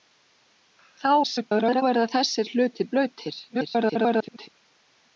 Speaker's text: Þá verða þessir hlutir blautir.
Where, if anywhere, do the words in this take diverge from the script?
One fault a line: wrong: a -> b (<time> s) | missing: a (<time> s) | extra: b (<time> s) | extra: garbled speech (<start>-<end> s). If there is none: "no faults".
extra: garbled speech (1.2-1.8 s)
extra: garbled speech (3.5-4.5 s)